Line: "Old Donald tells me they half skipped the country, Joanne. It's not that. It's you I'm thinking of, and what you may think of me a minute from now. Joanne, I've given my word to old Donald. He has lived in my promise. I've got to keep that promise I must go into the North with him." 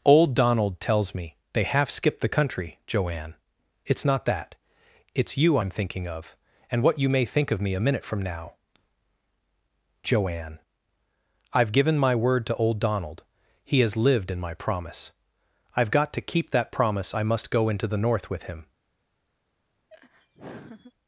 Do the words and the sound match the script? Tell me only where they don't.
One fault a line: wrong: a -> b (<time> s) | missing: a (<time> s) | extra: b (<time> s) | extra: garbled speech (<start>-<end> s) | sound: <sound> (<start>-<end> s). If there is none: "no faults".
sound: laugh (19.9-20.9 s)